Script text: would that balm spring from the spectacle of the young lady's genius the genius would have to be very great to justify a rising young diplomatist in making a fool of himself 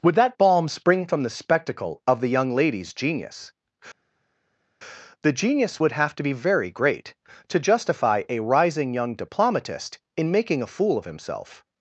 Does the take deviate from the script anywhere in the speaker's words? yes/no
no